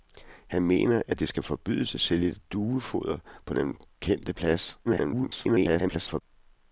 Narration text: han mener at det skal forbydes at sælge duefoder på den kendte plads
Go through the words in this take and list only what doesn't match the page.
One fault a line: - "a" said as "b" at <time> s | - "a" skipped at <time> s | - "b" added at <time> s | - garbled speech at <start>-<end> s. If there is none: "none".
- garbled speech at 4.8-6.2 s